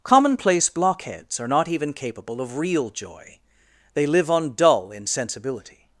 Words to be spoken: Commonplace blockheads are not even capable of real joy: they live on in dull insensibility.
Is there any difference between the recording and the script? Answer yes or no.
yes